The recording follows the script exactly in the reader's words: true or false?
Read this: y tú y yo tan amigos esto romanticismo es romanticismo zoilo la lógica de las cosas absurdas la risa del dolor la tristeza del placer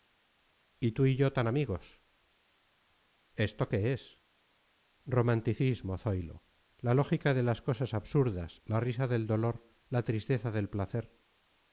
false